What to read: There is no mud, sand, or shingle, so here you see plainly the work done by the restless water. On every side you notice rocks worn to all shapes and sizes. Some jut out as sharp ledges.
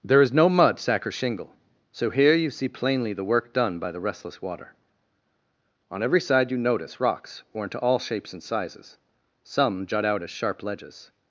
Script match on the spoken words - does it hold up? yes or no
no